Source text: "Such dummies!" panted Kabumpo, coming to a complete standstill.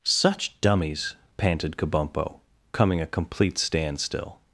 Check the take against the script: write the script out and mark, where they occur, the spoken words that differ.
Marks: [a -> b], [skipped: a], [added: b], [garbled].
"Such dummies!" panted Kabumpo, coming [skipped: to] a complete standstill.